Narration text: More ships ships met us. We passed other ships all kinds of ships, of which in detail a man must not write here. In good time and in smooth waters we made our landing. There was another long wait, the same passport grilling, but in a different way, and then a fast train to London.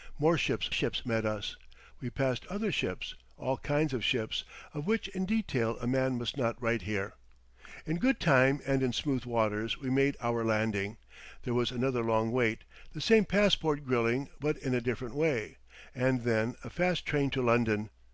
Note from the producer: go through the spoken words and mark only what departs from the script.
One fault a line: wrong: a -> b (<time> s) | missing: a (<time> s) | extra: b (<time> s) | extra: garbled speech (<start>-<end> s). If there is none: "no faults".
no faults